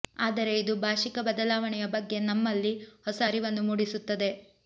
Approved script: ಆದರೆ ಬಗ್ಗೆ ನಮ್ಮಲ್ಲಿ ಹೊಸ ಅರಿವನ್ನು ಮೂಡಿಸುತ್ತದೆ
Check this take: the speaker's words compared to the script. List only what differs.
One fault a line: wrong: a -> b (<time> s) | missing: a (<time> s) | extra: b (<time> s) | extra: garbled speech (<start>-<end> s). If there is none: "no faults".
extra: ಇದು ಭಾಷಿಕ ಬದಲಾವಣೆಯ (0.6 s)